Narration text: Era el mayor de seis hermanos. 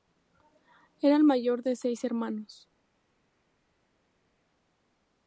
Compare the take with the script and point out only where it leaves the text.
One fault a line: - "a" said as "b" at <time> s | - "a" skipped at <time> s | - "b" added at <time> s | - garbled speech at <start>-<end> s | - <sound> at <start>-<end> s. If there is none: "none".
none